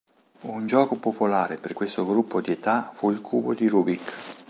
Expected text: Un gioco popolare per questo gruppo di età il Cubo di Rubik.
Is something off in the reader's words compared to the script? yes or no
yes